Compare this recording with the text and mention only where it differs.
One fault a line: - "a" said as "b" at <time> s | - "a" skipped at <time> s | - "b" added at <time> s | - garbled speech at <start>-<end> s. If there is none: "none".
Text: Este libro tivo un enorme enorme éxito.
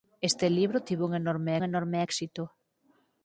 none